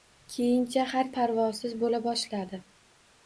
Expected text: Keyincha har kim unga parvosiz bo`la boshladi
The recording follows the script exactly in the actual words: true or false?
false